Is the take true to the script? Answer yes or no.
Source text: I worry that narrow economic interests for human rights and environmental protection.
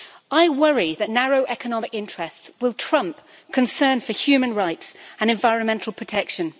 no